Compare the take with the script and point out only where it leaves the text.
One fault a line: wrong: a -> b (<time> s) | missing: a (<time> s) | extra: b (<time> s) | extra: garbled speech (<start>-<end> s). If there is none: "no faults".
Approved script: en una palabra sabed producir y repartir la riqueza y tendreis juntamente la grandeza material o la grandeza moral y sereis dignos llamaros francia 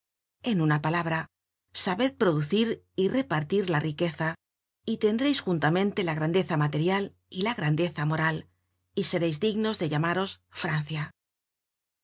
wrong: o -> y (7.3 s)
extra: de (9.8 s)